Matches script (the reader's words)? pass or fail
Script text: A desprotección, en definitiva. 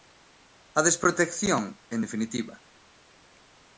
pass